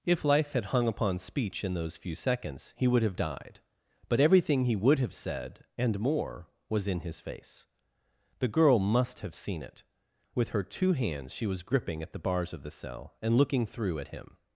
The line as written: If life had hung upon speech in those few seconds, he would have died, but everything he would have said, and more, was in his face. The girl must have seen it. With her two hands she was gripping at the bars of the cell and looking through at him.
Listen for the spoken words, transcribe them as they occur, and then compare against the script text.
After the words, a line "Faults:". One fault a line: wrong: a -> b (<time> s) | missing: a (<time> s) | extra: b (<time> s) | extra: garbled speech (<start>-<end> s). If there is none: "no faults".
If life had hung upon speech in those few seconds, he would have died, but everything he would have said, and more, was in his face. The girl must have seen it. With her two hands she was gripping at the bars of the cell and looking through at him.
Faults:
no faults